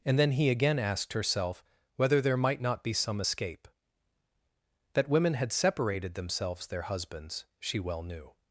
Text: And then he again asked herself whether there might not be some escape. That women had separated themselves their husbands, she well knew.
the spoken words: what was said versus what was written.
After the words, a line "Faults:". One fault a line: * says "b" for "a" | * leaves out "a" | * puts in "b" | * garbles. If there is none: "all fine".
And then he again asked herself whether there might not be some escape. That women had separated themselves their husbands, she well knew.
Faults:
all fine